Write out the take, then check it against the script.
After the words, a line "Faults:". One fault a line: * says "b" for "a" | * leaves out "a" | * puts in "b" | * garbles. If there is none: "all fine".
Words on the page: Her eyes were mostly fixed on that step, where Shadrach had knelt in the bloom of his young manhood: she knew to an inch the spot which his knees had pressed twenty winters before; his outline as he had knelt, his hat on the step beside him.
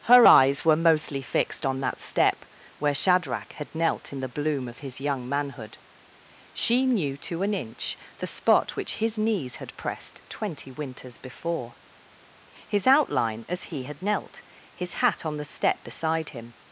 Her eyes were mostly fixed on that step, where Shadrach had knelt in the bloom of his young manhood: she knew to an inch the spot which his knees had pressed twenty winters before; his outline as he had knelt, his hat on the step beside him.
Faults:
all fine